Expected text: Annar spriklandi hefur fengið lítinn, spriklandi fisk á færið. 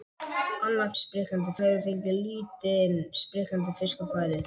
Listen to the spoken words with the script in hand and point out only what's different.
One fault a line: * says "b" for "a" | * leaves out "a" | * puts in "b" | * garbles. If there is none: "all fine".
all fine